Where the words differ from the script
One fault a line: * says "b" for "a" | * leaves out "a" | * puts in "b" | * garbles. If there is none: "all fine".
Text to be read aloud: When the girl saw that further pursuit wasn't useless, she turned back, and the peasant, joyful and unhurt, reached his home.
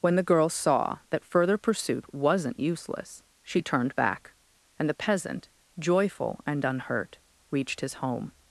all fine